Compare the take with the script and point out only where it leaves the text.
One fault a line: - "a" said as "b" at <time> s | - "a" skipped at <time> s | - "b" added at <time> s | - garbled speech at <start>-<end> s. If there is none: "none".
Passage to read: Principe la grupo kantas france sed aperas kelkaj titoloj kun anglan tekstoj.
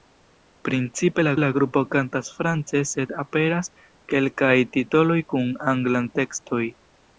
- "la" added at 1.4 s